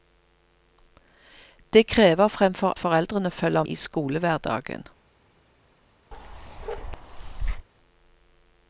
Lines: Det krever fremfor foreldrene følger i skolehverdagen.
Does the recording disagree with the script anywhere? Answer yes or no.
no